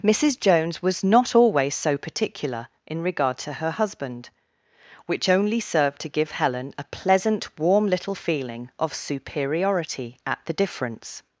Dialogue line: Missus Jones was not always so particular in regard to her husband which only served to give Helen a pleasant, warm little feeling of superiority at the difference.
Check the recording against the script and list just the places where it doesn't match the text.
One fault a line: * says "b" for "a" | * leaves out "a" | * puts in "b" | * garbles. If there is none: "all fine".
all fine